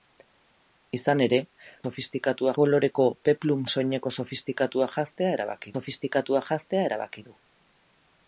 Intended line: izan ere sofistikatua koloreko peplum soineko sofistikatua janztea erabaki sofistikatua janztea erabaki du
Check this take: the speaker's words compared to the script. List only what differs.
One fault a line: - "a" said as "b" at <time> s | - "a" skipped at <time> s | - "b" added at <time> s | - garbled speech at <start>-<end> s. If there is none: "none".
none